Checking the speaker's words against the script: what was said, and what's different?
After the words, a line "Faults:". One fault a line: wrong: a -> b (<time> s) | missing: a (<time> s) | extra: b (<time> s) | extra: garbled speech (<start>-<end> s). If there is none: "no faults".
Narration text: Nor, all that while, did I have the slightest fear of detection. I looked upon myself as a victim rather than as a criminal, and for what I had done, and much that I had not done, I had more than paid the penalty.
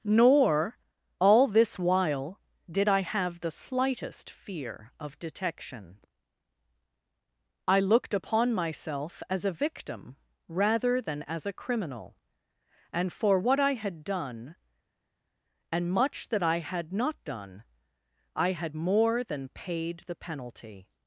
Nor, all this while, did I have the slightest fear of detection. I looked upon myself as a victim rather than as a criminal, and for what I had done, and much that I had not done, I had more than paid the penalty.
Faults:
wrong: that -> this (1.5 s)